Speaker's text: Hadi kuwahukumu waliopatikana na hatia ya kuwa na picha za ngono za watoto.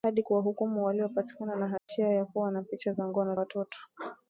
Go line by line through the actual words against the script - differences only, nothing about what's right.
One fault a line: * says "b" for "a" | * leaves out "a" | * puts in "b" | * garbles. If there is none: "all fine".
* leaves out "za"